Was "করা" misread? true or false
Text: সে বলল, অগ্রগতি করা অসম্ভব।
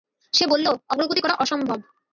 false